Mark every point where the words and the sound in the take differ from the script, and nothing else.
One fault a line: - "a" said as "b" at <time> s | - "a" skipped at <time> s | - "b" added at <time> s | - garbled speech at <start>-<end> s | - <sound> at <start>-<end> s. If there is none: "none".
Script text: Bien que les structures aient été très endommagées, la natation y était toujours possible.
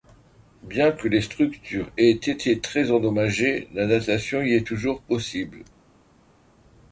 - "était" said as "est" at 4.5 s